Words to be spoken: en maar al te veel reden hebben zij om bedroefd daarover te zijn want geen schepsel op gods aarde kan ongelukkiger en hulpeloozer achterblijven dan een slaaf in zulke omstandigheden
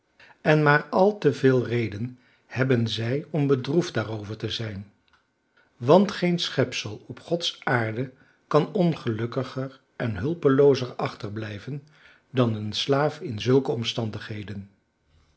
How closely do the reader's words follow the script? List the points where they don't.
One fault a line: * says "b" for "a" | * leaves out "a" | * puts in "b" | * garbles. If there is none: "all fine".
all fine